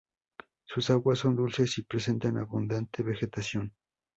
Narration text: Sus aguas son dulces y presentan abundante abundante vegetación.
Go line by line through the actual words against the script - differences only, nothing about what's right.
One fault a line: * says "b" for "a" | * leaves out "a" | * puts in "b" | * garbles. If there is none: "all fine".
* leaves out "abundante"